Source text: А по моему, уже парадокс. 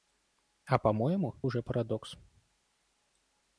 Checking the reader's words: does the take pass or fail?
pass